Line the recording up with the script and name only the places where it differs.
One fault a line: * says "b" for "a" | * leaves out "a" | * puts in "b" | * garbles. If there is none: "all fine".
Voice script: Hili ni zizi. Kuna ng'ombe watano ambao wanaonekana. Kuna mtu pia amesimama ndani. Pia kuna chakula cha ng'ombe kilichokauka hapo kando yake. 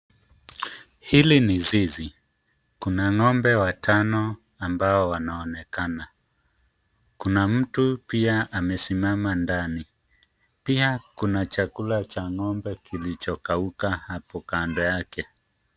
all fine